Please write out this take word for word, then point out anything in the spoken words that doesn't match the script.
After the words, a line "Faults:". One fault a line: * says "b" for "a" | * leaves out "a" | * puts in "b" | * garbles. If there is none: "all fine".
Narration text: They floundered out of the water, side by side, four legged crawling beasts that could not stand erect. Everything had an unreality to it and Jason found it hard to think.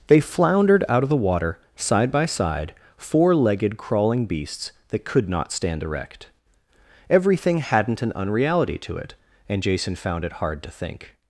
They floundered out of the water, side by side, four legged crawling beasts that could not stand erect. Everything hadn't an unreality to it and Jason found it hard to think.
Faults:
* says "hadn't" for "had"